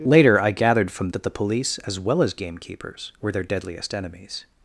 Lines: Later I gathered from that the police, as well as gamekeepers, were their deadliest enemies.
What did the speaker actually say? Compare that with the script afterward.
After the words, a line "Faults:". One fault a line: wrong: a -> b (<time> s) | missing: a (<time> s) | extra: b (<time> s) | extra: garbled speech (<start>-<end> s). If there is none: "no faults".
Later I gathered from that the police, as well as gamekeepers, were their deadliest enemies.
Faults:
no faults